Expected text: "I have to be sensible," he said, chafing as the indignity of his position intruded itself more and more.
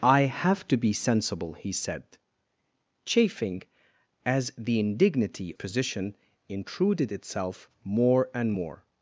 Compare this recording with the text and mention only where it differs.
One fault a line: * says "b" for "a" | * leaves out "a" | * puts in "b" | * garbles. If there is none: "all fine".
* leaves out "of his"